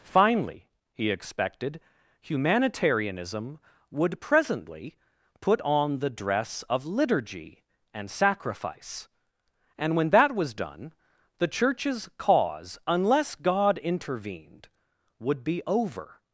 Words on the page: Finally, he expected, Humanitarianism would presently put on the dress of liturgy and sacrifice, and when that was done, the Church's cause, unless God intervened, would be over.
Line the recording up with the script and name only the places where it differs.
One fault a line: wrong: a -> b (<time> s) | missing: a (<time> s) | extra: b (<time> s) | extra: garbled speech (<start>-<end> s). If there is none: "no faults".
no faults